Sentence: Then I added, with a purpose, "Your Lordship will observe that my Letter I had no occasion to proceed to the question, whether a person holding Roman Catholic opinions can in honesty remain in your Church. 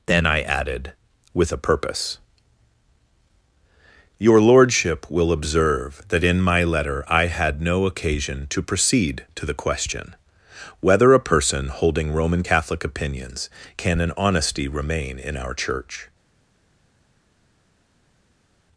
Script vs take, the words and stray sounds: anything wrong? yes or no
yes